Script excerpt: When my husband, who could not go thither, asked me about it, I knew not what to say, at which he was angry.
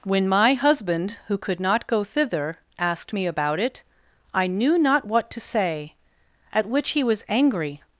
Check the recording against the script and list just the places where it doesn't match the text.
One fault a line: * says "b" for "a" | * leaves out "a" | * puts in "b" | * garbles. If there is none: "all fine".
all fine